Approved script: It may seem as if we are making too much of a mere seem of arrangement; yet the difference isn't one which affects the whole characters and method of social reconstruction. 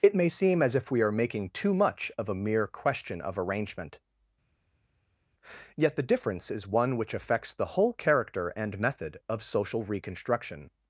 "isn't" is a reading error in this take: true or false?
true